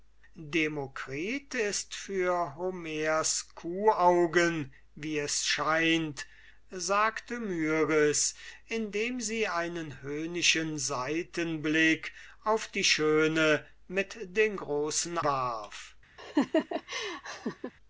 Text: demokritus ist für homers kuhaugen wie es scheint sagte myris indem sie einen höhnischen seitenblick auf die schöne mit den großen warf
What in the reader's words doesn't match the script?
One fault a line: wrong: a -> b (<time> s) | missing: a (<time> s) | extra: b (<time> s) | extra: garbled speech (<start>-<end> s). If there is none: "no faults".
no faults